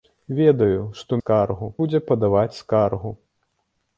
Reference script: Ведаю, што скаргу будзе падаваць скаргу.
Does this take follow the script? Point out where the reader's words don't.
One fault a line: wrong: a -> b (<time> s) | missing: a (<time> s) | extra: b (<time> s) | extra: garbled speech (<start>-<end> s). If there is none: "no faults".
no faults